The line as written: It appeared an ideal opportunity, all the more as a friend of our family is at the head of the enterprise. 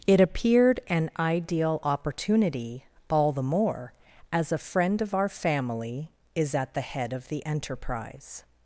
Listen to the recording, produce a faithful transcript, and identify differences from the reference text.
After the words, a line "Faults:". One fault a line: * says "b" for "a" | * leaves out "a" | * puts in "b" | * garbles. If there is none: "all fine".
It appeared an ideal opportunity, all the more as a friend of our family is at the head of the enterprise.
Faults:
all fine